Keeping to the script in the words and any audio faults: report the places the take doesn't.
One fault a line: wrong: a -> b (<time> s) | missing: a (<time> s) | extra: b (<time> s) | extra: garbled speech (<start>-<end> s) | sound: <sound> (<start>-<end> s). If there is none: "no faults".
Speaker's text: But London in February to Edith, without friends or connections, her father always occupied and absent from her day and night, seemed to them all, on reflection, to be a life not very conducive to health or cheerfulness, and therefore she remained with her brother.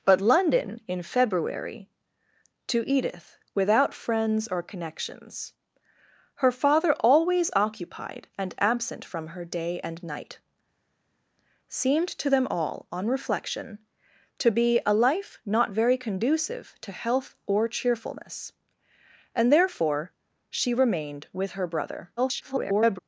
extra: garbled speech (22.2-23.0 s)